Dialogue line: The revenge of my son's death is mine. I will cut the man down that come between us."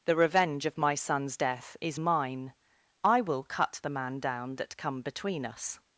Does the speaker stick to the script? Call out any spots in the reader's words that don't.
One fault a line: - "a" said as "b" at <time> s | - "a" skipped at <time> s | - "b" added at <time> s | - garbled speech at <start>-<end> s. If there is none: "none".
none